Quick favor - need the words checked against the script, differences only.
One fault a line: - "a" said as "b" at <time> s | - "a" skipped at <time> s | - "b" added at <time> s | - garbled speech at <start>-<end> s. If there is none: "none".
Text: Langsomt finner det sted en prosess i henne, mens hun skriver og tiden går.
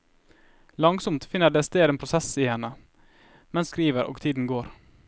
- "hun" skipped at 3.7 s